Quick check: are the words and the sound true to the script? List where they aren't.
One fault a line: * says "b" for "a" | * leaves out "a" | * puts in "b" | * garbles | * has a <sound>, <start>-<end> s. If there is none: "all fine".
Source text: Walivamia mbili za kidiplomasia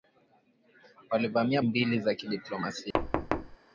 * has a thud, 2.9-3.6 s